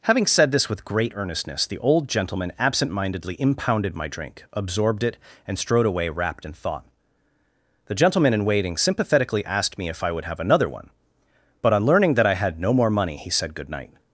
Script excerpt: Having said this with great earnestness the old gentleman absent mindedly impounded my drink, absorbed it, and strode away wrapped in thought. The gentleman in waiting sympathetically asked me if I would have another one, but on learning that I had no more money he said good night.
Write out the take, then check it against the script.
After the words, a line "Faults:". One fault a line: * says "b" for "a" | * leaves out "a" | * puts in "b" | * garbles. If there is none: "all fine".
Having said this with great earnestness the old gentleman absent mindedly impounded my drink, absorbed it, and strode away wrapped in thought. The gentleman in waiting sympathetically asked me if I would have another one, but on learning that I had no more money he said good night.
Faults:
all fine